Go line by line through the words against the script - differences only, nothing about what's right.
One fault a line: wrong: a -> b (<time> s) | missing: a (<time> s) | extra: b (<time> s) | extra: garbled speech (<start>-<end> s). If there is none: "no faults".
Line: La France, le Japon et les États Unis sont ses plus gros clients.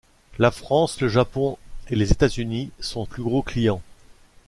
missing: ses (3.0 s)